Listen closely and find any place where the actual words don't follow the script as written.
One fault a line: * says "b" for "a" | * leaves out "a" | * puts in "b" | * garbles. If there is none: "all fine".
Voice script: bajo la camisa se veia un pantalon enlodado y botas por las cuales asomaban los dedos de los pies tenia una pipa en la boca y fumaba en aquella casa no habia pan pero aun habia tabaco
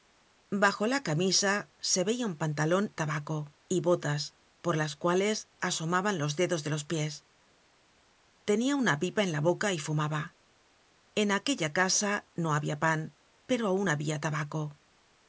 * says "tabaco" for "enlodado"